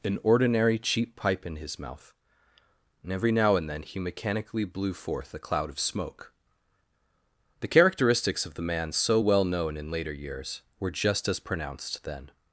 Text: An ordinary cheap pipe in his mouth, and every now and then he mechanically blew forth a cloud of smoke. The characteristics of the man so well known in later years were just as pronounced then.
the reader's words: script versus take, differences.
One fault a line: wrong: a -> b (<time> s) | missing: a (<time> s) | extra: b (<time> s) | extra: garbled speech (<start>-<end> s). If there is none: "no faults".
no faults